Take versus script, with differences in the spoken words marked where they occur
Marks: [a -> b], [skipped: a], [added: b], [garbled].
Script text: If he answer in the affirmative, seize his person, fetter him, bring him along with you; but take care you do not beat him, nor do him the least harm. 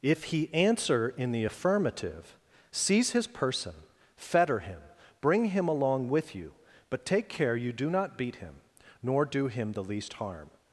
If he answer in the affirmative, seize his person, fetter him, bring him along with you; but take care you do not beat him, nor do him the least harm.